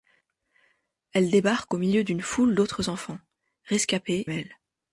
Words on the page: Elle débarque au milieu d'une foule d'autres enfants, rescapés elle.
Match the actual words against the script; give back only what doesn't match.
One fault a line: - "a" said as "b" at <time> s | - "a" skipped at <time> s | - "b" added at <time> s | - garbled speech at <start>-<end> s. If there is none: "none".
none